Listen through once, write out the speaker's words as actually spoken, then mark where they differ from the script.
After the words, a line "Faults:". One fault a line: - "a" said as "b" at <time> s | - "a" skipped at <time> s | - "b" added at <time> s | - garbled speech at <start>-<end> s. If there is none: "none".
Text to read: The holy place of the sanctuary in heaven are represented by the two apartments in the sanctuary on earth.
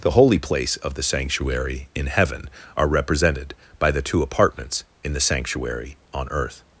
The holy place of the sanctuary in heaven are represented by the two apartments in the sanctuary on earth.
Faults:
none